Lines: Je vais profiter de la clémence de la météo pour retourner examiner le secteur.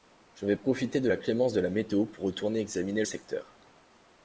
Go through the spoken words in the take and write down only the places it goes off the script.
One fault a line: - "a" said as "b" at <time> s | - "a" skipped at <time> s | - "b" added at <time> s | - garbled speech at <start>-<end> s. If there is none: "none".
- "le" skipped at 3.0 s